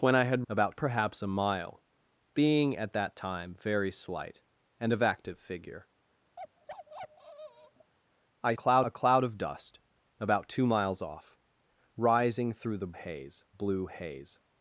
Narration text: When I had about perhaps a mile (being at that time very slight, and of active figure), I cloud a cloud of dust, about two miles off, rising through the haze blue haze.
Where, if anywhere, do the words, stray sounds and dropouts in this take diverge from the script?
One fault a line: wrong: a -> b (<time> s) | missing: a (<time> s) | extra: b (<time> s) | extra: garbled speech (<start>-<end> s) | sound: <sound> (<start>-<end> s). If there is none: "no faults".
sound: bark (6.4-7.9 s)